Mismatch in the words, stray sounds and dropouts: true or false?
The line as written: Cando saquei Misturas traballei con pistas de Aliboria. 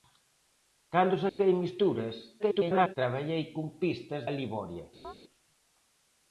true